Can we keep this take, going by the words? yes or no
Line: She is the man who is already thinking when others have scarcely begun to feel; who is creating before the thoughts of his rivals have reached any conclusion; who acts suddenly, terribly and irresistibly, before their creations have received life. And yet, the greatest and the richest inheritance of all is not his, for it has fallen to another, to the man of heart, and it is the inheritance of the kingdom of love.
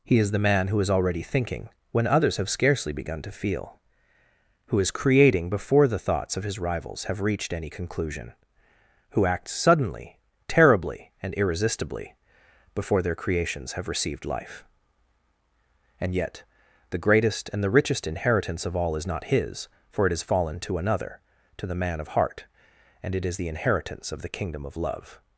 no